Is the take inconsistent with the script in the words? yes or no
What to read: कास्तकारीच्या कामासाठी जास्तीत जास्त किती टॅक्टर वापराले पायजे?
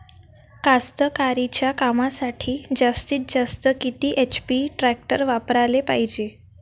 yes